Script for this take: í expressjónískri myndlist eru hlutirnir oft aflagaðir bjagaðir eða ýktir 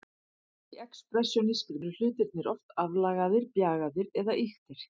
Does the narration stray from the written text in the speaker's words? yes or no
yes